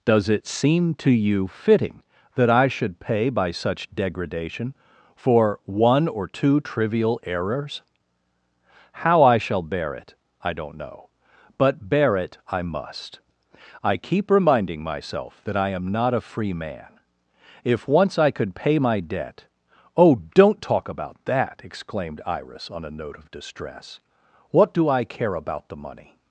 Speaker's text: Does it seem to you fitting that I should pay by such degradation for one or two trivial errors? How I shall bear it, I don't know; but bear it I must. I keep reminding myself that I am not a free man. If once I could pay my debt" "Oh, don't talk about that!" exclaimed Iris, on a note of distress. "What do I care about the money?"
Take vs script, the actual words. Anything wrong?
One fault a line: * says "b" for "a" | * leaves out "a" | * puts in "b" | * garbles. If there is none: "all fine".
all fine